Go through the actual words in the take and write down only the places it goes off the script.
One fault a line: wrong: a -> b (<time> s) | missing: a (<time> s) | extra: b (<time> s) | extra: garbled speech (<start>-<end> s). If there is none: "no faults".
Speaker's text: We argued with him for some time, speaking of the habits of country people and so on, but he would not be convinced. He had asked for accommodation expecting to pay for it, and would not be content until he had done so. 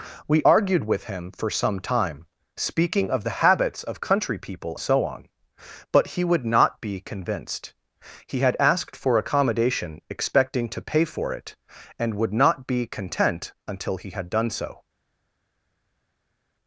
missing: and (4.8 s)